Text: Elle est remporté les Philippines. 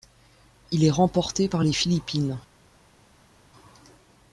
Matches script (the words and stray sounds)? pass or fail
fail